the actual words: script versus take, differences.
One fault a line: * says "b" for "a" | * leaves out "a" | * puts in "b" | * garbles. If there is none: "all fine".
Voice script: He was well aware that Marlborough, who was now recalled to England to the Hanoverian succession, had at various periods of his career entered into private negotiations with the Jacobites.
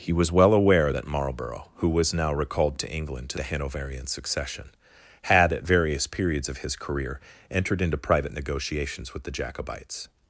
all fine